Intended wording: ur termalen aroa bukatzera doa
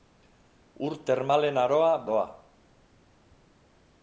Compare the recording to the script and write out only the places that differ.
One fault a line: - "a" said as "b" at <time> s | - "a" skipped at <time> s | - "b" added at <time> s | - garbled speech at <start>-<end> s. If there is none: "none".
- "bukatzera" skipped at 1.9 s